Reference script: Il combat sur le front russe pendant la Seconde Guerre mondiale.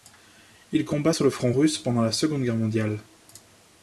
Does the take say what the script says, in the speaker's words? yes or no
yes